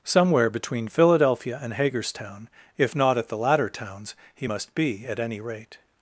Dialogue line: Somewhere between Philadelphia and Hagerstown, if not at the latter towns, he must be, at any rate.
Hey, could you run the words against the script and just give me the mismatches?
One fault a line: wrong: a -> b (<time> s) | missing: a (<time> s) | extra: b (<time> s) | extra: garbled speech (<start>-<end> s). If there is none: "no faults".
no faults